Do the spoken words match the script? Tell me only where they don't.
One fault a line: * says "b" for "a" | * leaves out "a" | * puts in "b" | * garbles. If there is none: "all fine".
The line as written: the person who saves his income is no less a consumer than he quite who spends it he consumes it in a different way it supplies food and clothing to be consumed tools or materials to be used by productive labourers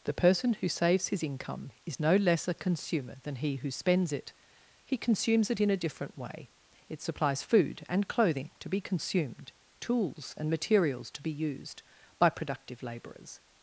* leaves out "quite"
* says "and" for "or"